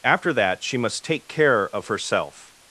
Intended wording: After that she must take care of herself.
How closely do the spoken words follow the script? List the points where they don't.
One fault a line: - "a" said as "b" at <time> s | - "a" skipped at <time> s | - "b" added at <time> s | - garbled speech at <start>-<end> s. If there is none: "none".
none